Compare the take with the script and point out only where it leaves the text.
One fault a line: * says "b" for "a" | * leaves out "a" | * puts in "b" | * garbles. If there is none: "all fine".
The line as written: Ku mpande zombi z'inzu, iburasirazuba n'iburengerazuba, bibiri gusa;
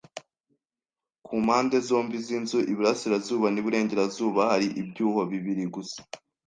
* puts in "hari ibyuho"